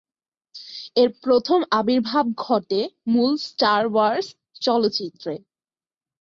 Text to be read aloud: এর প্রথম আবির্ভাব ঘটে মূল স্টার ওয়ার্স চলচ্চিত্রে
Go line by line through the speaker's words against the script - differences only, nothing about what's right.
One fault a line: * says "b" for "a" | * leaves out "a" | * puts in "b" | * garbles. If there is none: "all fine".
all fine